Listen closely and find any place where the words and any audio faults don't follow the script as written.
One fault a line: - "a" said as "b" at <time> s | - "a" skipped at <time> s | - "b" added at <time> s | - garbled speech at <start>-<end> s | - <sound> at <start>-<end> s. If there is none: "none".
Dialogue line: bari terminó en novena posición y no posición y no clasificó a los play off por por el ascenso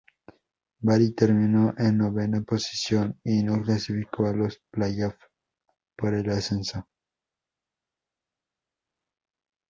- "posición y no" skipped at 3.6 s
- "por" skipped at 6.1 s